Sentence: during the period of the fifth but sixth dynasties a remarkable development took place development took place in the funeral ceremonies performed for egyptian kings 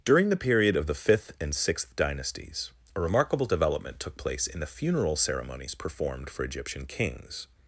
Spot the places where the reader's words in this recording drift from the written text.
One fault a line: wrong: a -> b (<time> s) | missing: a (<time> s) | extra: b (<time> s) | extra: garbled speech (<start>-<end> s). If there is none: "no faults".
wrong: but -> and (1.4 s)
missing: development took place (4.5 s)